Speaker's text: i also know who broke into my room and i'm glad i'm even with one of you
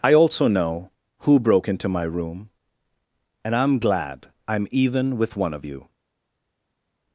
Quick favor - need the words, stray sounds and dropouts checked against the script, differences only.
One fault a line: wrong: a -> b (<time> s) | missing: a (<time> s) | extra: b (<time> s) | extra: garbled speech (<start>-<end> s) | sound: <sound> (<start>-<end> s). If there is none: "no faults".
no faults